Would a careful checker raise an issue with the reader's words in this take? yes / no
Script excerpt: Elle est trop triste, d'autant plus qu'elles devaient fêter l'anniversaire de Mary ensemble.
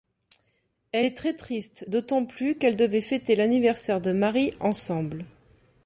yes